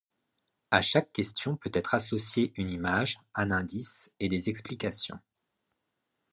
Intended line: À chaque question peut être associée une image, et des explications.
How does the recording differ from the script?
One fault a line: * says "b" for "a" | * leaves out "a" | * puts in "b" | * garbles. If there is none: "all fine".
* puts in "un indice"